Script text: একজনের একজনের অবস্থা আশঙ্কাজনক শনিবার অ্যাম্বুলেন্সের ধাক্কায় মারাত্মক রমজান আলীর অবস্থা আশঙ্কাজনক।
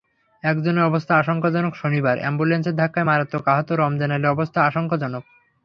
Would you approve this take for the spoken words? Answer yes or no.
no